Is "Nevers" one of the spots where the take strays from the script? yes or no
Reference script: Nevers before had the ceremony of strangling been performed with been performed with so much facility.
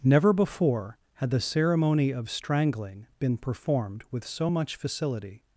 yes